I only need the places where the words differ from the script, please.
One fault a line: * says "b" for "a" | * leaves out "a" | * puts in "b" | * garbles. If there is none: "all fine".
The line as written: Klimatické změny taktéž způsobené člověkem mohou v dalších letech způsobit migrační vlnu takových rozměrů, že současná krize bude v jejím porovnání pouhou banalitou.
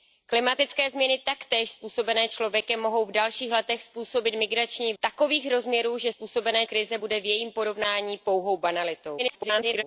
* leaves out "vlnu"
* says "způsobené" for "současná"
* garbles